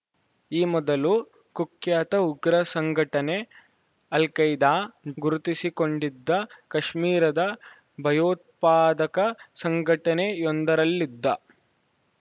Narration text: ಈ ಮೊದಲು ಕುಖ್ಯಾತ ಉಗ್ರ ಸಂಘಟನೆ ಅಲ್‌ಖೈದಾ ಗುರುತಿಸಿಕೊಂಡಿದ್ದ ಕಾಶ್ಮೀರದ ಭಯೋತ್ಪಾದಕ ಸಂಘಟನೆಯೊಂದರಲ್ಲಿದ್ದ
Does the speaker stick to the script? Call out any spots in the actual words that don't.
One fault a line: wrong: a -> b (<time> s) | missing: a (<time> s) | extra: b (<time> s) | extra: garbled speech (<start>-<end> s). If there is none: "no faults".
no faults